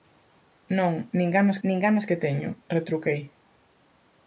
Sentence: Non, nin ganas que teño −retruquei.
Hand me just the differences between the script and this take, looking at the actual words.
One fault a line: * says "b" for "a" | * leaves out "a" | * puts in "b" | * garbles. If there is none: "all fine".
* puts in "nin ganas"